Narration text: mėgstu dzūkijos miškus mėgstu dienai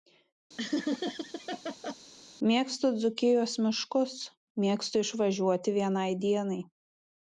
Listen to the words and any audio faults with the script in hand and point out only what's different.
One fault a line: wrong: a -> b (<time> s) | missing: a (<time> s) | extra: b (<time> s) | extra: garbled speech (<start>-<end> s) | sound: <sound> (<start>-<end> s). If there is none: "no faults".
sound: laugh (0.6-1.9 s)
extra: išvažiuoti vienai (5.1 s)